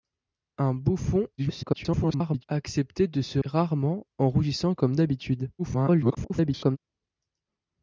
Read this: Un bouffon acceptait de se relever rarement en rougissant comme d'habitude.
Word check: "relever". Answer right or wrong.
wrong